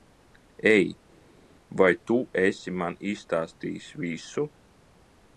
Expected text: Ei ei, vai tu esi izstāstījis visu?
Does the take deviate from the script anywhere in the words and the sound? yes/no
yes